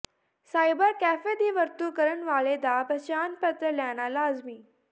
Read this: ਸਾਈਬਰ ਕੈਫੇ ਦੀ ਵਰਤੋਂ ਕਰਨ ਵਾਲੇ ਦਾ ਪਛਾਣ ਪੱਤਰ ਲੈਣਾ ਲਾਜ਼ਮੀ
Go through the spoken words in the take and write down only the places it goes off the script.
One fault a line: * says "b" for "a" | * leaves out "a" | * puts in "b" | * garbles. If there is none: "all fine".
all fine